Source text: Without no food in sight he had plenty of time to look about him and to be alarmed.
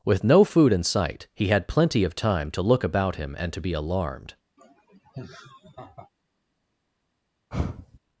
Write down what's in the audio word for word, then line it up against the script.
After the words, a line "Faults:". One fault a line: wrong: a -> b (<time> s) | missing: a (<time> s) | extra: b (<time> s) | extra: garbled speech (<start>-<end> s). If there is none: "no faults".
With no food in sight he had plenty of time to look about him and to be alarmed.
Faults:
wrong: Without -> With (0.0 s)